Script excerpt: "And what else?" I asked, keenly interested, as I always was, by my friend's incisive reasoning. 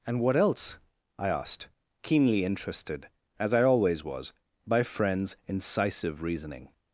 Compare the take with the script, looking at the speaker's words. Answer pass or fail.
fail